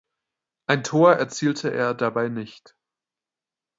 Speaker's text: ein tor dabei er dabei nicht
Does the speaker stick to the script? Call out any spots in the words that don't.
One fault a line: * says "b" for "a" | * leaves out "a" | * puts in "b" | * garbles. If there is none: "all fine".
* says "erzielte" for "dabei"